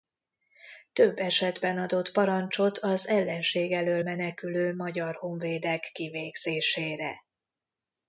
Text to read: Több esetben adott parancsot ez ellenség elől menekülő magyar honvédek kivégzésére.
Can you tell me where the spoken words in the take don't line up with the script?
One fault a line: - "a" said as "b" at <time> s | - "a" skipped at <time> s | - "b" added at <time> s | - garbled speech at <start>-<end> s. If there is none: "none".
- "ez" said as "az" at 2.8 s